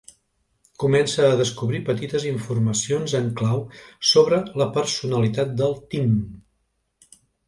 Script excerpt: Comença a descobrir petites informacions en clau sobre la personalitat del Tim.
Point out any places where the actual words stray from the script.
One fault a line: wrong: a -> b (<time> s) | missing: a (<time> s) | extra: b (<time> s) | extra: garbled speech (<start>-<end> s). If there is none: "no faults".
no faults